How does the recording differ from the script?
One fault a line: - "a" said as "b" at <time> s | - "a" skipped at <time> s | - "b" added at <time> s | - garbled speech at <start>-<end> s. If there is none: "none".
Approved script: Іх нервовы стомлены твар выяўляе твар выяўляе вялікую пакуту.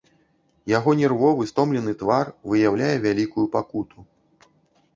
- "Іх" said as "Яго" at 0.8 s
- "твар выяўляе" skipped at 2.9 s